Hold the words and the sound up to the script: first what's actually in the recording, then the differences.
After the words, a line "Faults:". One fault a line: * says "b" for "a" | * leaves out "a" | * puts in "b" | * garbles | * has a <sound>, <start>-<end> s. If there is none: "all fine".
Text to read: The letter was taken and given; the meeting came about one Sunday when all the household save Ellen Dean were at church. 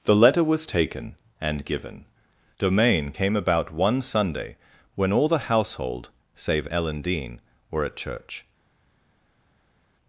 The letter was taken and given; domain came about one Sunday when all the household save Ellen Dean were at church.
Faults:
* says "domain" for "the meeting"